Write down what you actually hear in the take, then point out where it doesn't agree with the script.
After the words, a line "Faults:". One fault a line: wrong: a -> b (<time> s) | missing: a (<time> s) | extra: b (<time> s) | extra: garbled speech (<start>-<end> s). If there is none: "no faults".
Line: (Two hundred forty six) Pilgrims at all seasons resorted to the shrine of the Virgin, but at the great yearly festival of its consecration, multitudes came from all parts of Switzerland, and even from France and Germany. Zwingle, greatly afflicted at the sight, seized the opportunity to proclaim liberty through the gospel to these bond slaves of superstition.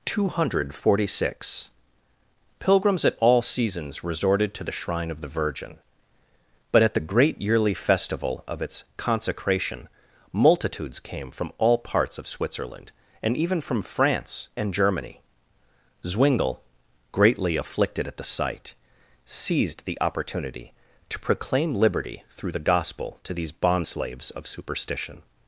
(Two hundred forty six) Pilgrims at all seasons resorted to the shrine of the Virgin, but at the great yearly festival of its consecration, multitudes came from all parts of Switzerland, and even from France and Germany. Zwingle, greatly afflicted at the sight, seized the opportunity to proclaim liberty through the gospel to these bond slaves of superstition.
Faults:
no faults